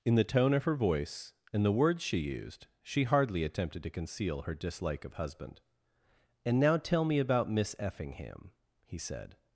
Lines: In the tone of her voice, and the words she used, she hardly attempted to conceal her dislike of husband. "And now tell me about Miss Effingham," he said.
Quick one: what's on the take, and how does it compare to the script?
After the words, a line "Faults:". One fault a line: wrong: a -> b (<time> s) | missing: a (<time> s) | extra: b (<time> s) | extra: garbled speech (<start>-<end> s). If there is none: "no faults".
In the tone of her voice, and the words she used, she hardly attempted to conceal her dislike of husband. "And now tell me about Miss Effingham," he said.
Faults:
no faults